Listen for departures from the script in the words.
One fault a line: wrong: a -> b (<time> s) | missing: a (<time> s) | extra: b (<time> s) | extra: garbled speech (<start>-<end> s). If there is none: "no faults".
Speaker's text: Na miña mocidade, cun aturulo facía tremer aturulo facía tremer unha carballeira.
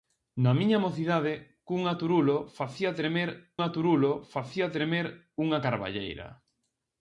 no faults